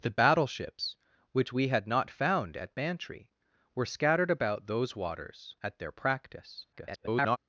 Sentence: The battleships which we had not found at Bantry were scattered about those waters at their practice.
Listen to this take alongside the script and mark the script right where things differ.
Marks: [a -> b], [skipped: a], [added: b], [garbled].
The battleships which we had not found at Bantry were scattered about those waters at their practice. [garbled]